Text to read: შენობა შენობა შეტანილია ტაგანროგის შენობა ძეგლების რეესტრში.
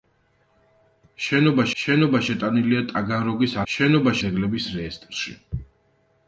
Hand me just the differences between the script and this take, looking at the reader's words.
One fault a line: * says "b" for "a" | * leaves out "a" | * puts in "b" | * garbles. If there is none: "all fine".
all fine